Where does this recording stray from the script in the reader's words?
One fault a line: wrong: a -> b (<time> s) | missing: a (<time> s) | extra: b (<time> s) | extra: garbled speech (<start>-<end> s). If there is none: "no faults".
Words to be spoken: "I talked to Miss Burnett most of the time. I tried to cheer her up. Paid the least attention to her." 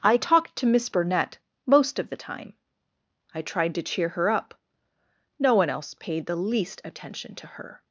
extra: No one else (5.4 s)